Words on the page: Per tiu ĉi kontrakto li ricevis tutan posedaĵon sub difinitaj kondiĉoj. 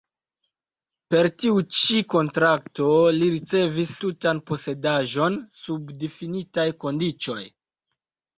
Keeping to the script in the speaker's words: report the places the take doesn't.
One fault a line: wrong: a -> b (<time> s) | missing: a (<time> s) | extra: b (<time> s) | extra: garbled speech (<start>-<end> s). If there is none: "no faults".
no faults